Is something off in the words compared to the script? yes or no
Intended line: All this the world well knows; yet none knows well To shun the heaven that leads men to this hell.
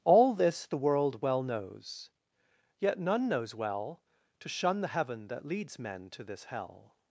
no